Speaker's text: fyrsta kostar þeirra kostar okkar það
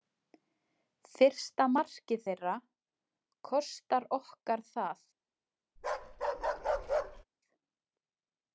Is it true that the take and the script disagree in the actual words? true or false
true